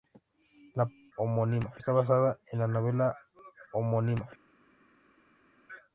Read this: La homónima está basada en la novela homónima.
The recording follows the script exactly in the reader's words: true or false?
true